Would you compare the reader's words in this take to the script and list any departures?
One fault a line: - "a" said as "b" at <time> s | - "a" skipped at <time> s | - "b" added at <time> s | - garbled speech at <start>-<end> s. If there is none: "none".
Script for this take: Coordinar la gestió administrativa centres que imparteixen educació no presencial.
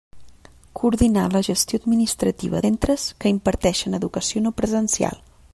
none